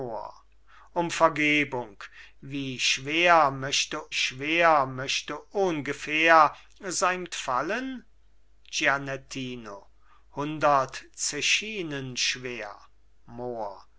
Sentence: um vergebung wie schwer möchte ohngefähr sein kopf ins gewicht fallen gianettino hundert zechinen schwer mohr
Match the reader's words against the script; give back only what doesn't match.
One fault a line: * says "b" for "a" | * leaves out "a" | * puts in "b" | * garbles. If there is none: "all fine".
* puts in "schwer möchte"
* leaves out "kopf ins gewicht"